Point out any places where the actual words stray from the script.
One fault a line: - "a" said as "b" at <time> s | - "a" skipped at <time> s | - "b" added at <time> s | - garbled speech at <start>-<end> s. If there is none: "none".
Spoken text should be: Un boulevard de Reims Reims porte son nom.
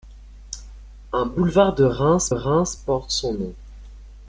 none